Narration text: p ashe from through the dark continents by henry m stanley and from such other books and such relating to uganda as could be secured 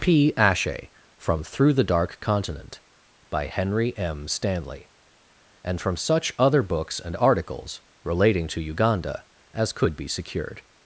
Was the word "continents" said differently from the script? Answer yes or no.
yes